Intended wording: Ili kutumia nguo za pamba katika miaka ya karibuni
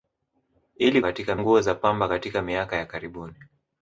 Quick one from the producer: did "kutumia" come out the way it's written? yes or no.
no